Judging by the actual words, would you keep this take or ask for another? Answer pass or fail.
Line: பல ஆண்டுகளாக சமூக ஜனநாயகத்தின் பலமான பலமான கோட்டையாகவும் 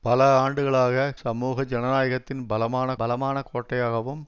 pass